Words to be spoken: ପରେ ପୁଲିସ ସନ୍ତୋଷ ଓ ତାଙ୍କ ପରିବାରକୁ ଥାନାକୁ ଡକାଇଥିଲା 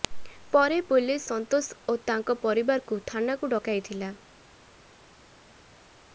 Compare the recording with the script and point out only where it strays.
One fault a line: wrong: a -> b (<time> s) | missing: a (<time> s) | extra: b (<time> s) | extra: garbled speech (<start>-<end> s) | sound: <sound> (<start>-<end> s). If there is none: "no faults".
no faults